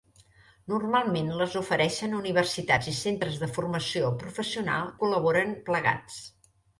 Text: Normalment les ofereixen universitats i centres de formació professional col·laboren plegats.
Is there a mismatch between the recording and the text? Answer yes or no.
no